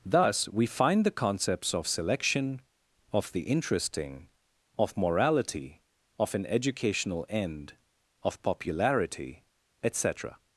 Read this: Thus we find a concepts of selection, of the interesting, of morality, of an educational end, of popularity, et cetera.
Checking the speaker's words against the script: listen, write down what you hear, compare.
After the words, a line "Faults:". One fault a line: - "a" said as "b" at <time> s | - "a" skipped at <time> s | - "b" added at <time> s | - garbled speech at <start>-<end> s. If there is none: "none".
Thus we find the concepts of selection, of the interesting, of morality, of an educational end, of popularity, et cetera.
Faults:
- "a" said as "the" at 1.0 s